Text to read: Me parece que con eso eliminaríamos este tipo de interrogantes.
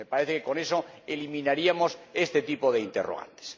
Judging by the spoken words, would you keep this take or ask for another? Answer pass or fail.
pass